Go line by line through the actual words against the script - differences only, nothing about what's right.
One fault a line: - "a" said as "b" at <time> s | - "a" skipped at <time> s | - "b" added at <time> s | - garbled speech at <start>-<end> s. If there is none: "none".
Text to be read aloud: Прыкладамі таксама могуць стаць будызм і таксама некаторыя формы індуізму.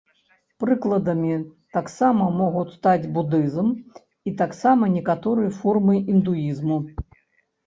none